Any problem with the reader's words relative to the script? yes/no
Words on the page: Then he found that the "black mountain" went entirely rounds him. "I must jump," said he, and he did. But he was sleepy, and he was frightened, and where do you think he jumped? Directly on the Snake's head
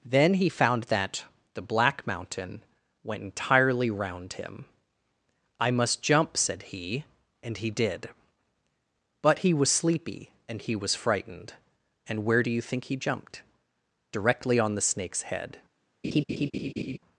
yes